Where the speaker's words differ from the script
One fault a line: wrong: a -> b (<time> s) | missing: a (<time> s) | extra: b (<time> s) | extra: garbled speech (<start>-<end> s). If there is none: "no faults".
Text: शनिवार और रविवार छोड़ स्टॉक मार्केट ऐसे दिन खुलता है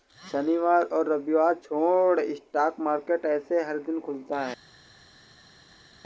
extra: हर (3.6 s)